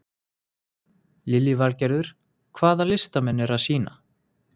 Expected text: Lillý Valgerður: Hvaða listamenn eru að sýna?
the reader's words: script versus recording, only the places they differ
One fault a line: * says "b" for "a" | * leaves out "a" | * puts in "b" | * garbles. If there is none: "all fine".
all fine